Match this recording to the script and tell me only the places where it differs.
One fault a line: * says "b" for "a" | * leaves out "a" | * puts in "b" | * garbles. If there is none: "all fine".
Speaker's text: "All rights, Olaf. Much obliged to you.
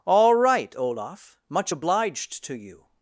* says "right" for "rights"